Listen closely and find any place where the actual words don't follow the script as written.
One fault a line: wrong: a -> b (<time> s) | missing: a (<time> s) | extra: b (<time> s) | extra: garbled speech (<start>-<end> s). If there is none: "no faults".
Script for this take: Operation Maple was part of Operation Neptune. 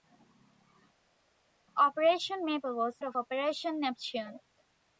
missing: part (3.0 s)